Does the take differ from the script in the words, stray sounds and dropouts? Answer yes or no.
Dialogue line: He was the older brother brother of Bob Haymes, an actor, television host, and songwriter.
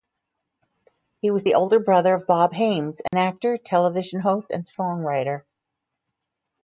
yes